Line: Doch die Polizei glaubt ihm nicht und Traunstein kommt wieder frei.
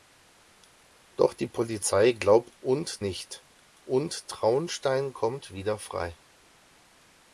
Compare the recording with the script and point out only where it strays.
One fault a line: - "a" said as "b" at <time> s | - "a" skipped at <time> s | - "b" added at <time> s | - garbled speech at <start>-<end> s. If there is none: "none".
- "ihm" said as "und" at 2.6 s